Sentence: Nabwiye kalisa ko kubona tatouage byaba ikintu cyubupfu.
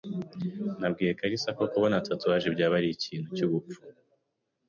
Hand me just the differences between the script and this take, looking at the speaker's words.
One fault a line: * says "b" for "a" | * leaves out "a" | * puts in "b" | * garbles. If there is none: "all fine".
* puts in "ari"